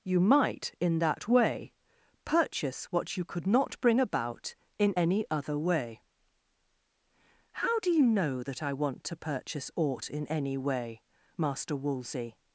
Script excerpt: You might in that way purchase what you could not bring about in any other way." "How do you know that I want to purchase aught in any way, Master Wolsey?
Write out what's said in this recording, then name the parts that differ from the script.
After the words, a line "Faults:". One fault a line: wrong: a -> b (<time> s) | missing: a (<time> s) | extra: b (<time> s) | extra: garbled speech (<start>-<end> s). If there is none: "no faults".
You might in that way purchase what you could not bring about in any other way." "How do you know that I want to purchase aught in any way, Master Wolsey?
Faults:
no faults